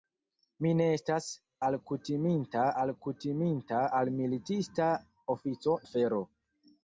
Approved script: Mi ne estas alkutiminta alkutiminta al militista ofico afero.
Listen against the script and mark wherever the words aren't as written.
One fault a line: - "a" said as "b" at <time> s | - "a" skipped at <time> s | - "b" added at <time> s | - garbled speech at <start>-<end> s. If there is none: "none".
none